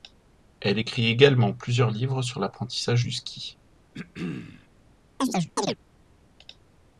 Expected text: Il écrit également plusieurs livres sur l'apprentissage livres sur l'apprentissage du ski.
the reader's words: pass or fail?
fail